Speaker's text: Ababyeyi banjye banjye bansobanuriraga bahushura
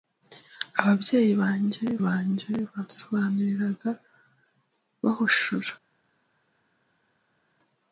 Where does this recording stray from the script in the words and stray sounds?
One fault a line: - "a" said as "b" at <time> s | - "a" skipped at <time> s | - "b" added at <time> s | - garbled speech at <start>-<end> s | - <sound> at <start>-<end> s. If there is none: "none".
none